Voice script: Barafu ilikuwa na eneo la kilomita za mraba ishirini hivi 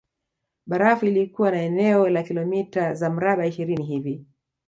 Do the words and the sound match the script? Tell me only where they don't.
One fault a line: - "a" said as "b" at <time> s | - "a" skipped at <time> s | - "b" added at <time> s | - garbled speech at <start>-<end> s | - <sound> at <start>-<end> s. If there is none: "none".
none